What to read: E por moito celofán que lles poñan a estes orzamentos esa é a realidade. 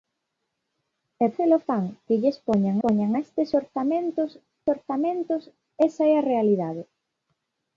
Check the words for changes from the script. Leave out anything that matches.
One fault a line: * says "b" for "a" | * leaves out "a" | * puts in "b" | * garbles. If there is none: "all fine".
* leaves out "por moito"
* puts in "poñan"
* puts in "orzamentos"